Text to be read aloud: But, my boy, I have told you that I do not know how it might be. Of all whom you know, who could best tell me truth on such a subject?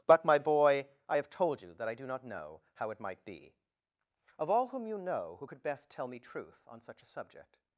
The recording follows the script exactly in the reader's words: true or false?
true